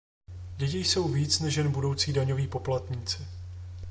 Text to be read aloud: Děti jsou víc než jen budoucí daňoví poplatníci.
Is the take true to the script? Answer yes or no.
yes